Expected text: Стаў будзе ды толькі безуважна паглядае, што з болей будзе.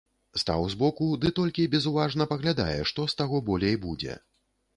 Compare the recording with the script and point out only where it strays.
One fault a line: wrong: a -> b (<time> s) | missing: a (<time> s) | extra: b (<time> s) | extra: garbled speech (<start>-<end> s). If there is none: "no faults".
wrong: будзе -> збоку (0.7 s)
extra: таго (3.2 s)